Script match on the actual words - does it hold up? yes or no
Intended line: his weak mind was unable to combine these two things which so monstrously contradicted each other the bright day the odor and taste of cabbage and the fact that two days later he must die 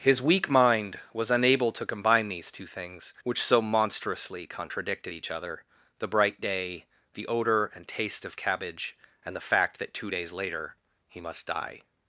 yes